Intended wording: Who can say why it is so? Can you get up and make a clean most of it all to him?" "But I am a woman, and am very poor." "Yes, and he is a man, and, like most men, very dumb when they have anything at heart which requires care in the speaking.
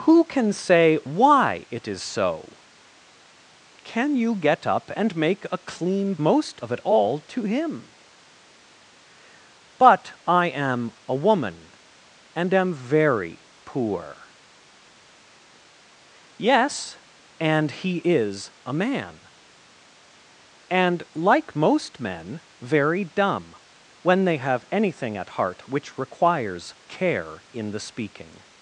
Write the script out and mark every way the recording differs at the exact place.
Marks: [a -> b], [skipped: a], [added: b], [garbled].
Who can say why it is so? Can you get up and make a clean most of it all to him?" "But I am a woman, and am very poor." "Yes, and he is a man, and, like most men, very dumb when they have anything at heart which requires care in the speaking.